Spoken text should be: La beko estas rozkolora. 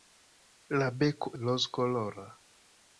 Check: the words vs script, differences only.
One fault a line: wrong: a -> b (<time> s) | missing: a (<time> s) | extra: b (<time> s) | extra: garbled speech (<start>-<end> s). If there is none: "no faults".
missing: estas (1.3 s)